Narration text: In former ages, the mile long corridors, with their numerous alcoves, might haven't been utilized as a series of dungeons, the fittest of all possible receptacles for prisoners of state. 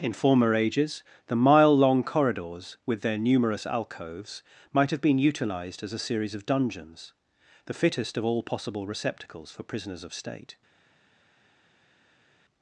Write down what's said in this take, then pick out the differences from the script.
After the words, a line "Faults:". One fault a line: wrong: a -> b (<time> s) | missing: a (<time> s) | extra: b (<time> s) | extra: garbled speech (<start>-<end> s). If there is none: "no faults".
In former ages, the mile long corridors, with their numerous alcoves, might have been utilized as a series of dungeons, the fittest of all possible receptacles for prisoners of state.
Faults:
wrong: haven't -> have (4.9 s)